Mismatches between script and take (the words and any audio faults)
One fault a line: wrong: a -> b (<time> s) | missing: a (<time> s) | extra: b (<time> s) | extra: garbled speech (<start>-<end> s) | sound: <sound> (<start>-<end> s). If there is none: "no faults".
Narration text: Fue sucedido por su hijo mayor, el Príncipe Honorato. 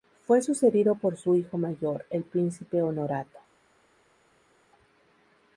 no faults